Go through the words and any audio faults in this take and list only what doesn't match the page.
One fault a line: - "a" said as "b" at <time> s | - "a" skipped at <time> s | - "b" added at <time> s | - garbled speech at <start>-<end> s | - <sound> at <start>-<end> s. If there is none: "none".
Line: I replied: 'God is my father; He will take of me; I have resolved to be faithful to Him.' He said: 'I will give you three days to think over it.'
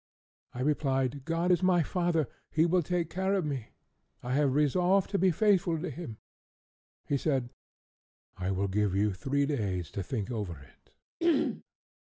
- "care" added at 3.1 s
- throat clearing at 11.2-11.6 s